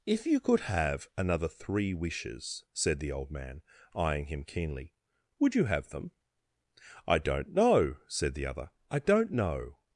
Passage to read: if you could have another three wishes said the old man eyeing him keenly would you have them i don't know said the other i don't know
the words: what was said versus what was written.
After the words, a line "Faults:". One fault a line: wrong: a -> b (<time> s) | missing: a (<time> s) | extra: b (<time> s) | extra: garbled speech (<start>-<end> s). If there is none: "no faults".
if you could have another three wishes said the old man eyeing him keenly would you have them i don't know said the other i don't know
Faults:
no faults